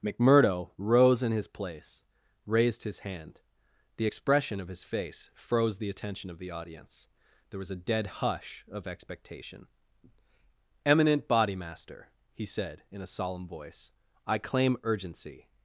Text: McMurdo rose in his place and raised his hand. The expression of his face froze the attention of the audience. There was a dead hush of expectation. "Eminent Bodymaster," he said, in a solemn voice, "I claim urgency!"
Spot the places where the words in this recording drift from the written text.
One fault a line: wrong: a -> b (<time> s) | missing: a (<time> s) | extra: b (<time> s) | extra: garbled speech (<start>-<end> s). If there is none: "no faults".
missing: and (2.0 s)